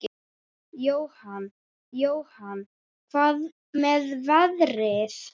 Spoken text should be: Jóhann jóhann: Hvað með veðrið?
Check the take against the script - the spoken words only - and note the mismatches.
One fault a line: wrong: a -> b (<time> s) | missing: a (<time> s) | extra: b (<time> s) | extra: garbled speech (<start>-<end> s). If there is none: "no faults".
no faults